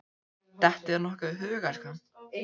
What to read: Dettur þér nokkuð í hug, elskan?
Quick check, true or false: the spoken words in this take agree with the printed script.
true